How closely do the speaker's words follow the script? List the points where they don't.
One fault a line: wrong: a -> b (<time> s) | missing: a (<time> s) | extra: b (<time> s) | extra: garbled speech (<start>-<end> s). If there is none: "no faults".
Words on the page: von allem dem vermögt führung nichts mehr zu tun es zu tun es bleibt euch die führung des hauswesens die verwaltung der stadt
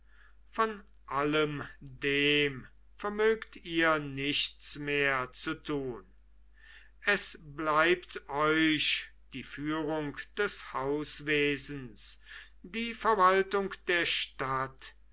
wrong: führung -> ihr (3.6 s)
missing: zu tun es (7.4 s)